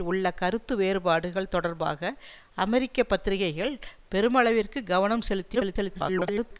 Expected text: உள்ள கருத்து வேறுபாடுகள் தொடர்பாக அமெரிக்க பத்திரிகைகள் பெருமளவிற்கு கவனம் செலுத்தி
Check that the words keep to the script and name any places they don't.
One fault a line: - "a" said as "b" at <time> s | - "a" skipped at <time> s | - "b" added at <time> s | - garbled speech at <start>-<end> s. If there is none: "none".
- garbled speech at 5.5-6.6 s